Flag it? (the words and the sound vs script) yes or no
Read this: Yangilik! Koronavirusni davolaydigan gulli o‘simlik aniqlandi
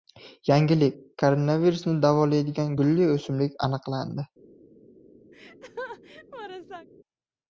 yes